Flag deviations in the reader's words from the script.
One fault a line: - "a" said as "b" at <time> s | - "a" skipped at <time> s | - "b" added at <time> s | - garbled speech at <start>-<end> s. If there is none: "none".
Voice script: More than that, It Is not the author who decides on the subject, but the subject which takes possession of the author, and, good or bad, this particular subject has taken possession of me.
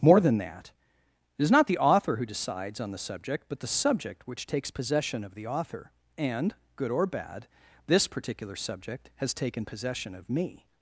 none